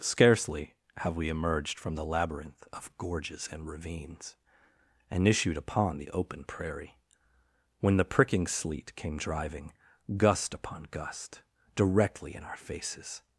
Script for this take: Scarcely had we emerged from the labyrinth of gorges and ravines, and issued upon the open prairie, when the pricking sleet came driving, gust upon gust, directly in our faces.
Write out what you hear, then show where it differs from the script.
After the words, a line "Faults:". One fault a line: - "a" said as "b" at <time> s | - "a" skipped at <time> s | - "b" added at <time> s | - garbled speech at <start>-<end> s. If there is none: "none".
Scarcely have we emerged from the labyrinth of gorges and ravines, and issued upon the open prairie, when the pricking sleet came driving, gust upon gust, directly in our faces.
Faults:
- "had" said as "have" at 1.0 s